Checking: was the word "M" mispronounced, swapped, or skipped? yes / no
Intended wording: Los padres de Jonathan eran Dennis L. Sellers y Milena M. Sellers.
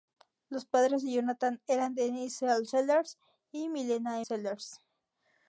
yes